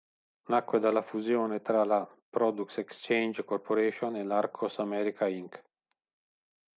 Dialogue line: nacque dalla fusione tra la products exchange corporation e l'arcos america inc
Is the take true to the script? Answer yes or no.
yes